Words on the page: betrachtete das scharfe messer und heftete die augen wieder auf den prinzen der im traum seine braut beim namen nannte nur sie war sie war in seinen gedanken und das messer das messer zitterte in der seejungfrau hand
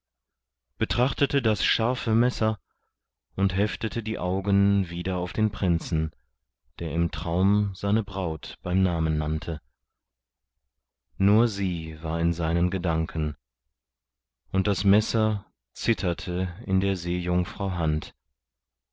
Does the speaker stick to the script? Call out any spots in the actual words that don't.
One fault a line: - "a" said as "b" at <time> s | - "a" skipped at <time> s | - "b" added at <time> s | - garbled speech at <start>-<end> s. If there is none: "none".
- "sie war" skipped at 12.2 s
- "das messer" skipped at 15.5 s